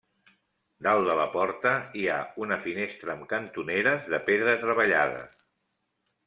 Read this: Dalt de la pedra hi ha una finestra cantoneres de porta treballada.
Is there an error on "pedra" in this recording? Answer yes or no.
yes